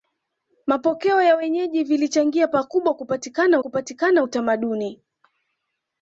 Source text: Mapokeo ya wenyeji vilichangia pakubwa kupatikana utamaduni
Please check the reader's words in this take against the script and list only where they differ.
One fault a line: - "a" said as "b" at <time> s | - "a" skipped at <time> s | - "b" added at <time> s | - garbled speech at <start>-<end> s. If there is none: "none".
- "kupatikana" added at 3.6 s